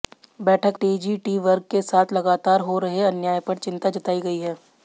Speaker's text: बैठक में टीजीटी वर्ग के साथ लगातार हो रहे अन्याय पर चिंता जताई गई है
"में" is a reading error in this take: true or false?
true